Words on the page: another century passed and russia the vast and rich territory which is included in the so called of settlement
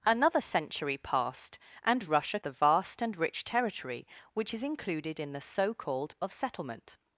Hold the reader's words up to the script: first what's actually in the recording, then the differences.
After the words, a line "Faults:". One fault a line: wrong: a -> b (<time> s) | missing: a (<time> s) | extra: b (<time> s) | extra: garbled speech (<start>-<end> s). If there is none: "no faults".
another century passed and russia the vast and rich territory which is included in the so called of settlement
Faults:
no faults